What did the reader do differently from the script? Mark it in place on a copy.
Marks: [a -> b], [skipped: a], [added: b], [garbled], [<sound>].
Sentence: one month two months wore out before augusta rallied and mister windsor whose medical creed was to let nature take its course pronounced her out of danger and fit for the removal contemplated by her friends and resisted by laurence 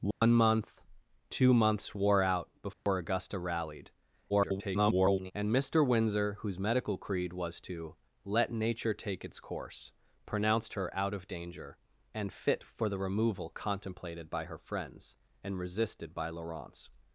one [dropout] month two months wore out before [dropout] augusta rallied [garbled] and mister windsor whose medical creed was to let nature take its course pronounced her out of danger and fit for the removal contemplated by her friends and resisted by laurence